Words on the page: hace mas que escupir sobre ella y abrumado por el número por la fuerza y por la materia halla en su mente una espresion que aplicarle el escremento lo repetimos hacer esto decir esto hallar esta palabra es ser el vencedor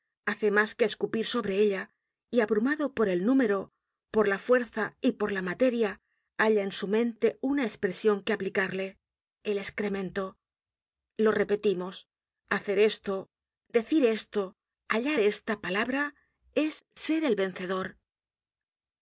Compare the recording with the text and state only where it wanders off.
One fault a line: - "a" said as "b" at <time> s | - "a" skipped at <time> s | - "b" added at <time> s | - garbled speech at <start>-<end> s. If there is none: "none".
none